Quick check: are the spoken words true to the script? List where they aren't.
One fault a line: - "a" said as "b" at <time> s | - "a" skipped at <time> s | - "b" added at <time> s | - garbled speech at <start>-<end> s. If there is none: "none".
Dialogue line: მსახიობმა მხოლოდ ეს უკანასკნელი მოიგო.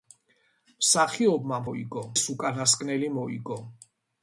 - "მხოლოდ" said as "მოიგო" at 1.7 s